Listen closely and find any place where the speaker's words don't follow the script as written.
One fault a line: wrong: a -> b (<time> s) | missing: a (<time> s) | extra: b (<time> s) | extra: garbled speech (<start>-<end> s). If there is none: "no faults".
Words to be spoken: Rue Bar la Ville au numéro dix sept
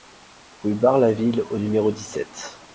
no faults